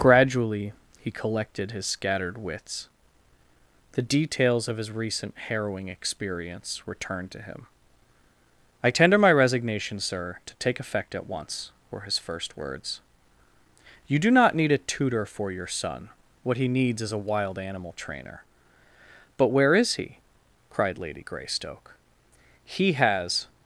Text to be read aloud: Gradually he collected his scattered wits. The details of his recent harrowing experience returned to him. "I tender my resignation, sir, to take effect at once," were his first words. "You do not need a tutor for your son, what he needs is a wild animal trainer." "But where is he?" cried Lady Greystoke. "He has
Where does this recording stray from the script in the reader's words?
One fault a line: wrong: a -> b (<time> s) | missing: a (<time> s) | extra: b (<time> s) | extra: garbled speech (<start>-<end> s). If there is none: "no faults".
no faults